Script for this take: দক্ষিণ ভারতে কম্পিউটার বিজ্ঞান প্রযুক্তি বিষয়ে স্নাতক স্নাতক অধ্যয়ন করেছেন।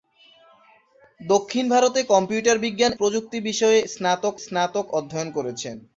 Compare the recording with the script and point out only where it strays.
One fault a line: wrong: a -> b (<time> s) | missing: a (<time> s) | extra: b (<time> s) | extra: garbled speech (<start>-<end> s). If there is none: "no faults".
no faults